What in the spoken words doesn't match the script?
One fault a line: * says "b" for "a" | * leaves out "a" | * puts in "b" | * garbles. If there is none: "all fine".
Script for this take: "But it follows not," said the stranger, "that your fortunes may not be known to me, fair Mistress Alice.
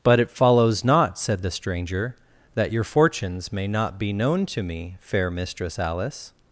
all fine